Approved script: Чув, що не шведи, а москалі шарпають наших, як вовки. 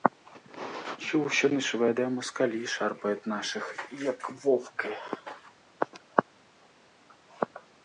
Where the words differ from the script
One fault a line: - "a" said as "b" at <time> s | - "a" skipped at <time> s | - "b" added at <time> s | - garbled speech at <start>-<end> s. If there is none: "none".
none